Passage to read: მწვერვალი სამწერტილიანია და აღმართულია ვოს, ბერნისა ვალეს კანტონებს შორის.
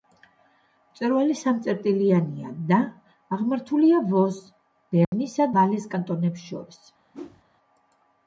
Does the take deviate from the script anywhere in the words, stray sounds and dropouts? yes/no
yes